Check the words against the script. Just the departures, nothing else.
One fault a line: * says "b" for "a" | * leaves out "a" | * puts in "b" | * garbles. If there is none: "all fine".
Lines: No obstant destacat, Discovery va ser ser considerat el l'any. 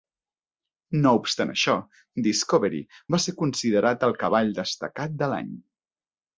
* says "això" for "destacat"
* leaves out "ser"
* puts in "cavall destacat de"